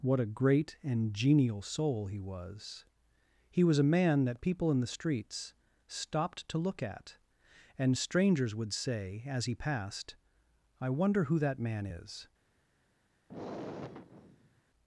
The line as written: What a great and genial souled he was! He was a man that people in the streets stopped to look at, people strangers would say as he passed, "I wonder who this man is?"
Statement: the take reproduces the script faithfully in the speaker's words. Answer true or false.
false